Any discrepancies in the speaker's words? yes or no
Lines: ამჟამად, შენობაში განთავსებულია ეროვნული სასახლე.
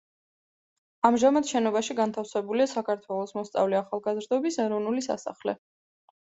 yes